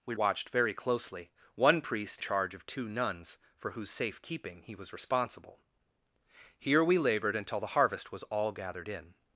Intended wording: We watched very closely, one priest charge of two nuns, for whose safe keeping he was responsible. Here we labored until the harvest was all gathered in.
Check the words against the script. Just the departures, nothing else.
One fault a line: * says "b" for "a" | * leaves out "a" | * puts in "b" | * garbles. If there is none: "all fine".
all fine